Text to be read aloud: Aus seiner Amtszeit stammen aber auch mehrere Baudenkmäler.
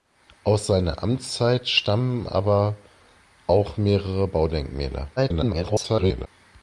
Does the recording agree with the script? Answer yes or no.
no